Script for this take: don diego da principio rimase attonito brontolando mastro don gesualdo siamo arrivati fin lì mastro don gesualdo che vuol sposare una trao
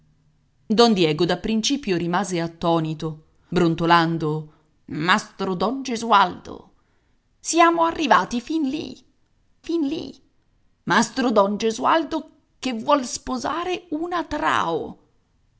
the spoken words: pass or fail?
fail